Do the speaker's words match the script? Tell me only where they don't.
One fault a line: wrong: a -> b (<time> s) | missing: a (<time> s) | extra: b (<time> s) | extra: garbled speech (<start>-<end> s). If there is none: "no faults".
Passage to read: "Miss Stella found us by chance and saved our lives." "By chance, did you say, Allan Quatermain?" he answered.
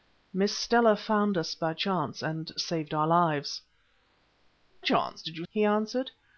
missing: By (3.6 s)
missing: say Allan Quatermain (5.5 s)